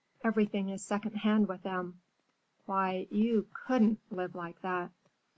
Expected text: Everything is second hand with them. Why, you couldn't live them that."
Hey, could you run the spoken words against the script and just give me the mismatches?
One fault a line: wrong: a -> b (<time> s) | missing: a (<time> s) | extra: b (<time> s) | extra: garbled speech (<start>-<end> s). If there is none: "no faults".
wrong: them -> like (4.3 s)